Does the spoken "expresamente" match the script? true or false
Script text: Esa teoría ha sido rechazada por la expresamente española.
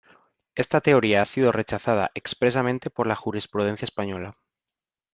false